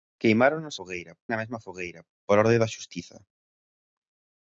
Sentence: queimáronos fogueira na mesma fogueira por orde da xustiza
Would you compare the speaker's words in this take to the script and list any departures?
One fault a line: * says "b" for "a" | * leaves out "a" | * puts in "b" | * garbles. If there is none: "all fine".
all fine